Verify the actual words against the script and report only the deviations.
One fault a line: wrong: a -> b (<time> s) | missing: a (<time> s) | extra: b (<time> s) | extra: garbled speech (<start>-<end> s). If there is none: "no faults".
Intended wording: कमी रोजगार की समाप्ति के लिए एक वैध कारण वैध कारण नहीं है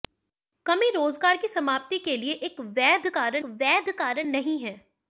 no faults